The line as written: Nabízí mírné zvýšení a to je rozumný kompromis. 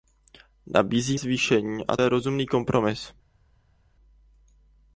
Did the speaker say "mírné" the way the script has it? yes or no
no